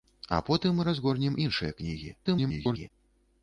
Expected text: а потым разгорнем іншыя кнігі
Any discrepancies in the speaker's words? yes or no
yes